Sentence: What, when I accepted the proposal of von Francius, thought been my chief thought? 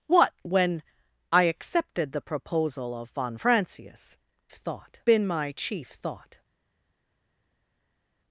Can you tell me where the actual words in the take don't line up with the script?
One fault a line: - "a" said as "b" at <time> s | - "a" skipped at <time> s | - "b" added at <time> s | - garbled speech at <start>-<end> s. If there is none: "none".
none